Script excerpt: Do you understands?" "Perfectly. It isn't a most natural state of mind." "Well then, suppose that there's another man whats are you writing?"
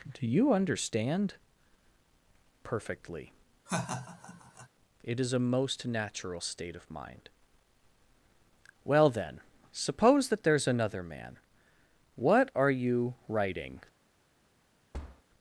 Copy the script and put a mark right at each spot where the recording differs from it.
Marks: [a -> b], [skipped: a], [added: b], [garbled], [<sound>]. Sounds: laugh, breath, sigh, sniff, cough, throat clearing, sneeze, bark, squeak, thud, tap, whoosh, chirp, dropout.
Do you [understands?" -> understand] "Perfectly. [laugh] It [isn't -> is] a most natural state of mind." "Well then, suppose that there's another man [whats -> what] are you writing?" [thud]